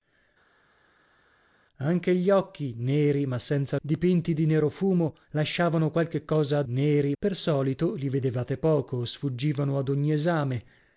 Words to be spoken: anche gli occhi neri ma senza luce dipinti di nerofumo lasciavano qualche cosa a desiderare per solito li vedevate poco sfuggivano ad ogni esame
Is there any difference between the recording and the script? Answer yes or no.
yes